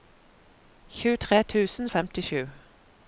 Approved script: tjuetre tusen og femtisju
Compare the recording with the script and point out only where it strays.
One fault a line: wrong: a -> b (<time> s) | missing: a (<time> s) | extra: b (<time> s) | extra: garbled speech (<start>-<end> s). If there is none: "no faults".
no faults